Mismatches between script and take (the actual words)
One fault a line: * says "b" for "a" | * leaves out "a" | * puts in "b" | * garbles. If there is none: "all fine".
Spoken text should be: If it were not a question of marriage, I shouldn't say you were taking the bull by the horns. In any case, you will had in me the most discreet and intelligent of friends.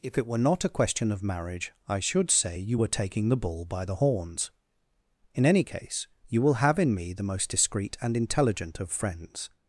* says "should" for "shouldn't"
* says "have" for "had"